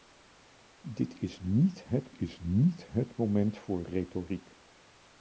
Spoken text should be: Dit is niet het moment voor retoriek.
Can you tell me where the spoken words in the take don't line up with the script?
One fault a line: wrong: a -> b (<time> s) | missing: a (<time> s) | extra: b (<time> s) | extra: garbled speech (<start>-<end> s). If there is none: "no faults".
extra: is niet het (2.1 s)